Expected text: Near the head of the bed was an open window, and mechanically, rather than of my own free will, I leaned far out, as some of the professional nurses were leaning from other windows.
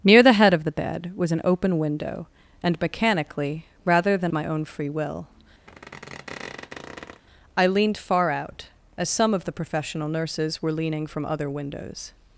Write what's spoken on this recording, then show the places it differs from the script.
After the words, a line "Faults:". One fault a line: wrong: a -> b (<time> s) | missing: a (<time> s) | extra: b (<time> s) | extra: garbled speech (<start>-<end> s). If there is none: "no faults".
Near the head of the bed was an open window, and mechanically, rather than my own free will, I leaned far out, as some of the professional nurses were leaning from other windows.
Faults:
missing: of (4.3 s)